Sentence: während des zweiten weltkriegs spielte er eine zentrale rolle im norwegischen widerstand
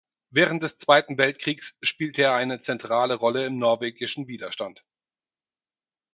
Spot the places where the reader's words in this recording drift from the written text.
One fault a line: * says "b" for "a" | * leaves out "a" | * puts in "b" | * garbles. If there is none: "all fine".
all fine